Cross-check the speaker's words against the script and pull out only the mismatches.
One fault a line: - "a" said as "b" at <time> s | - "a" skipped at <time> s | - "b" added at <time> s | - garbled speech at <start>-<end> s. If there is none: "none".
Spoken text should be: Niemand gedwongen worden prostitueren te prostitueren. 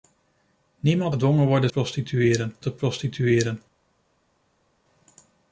none